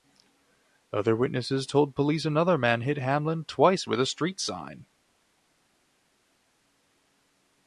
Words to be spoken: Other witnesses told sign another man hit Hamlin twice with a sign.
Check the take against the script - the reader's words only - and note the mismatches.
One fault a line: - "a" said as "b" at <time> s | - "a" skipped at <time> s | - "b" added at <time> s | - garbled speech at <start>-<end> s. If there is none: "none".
- "sign" said as "police" at 1.9 s
- "street" added at 4.0 s